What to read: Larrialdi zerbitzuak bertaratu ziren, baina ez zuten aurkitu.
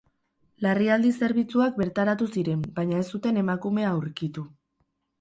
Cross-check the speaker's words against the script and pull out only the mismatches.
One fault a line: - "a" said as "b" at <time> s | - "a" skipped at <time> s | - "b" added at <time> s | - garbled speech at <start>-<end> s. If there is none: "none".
- "emakumea" added at 3.5 s